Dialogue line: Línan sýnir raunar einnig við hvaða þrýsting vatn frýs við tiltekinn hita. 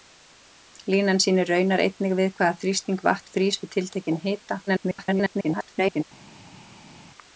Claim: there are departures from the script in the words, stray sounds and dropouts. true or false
true